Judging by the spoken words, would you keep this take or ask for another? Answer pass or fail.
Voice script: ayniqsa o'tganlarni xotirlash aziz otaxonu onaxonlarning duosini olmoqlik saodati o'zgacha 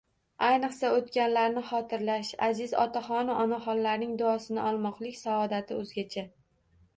pass